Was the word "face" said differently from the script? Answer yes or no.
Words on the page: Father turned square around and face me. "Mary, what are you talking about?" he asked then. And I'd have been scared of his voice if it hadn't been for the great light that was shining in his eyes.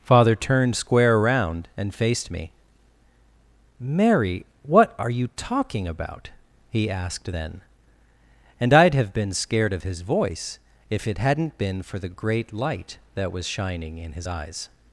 yes